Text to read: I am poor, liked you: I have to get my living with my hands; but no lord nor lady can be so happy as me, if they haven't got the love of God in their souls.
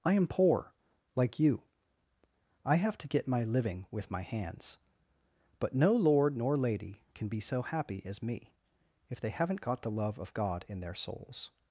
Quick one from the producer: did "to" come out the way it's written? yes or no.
yes